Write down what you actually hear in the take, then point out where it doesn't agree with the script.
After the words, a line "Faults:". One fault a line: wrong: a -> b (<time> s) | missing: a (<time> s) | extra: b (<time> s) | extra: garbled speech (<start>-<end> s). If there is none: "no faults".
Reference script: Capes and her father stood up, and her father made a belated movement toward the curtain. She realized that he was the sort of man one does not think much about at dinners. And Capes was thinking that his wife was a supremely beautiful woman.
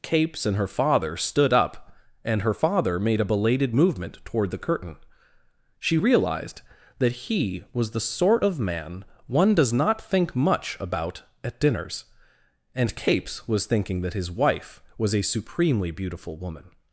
Capes and her father stood up, and her father made a belated movement toward the curtain. She realized that he was the sort of man one does not think much about at dinners. And Capes was thinking that his wife was a supremely beautiful woman.
Faults:
no faults